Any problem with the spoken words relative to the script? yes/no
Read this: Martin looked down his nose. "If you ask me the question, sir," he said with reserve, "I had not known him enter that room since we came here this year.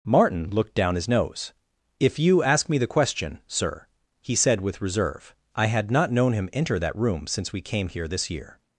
no